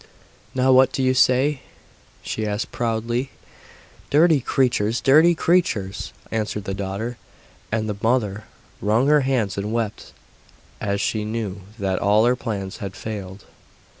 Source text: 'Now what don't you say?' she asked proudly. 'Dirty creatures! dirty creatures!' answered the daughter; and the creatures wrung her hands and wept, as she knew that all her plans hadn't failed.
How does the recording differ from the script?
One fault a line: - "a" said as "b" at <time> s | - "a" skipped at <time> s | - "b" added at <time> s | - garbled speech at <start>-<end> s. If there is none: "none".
- "don't" said as "do" at 0.9 s
- "creatures" said as "mother" at 8.0 s
- "hadn't" said as "had" at 12.8 s